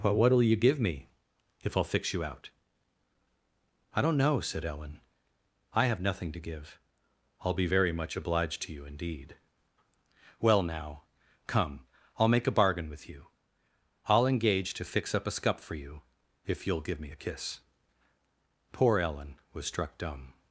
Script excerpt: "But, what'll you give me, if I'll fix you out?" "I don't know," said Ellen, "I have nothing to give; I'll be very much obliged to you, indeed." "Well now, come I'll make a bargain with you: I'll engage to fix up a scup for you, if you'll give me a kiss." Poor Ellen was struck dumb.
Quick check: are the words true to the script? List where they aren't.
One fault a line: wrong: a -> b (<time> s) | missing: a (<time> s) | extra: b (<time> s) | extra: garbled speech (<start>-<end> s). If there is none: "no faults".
no faults